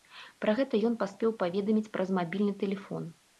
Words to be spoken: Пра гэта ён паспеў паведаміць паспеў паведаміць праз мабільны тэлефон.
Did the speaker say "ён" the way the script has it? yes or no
yes